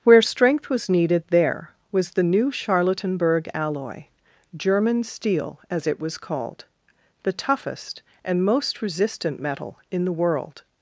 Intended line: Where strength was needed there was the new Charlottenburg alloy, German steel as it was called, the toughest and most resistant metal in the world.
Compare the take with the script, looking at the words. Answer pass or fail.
pass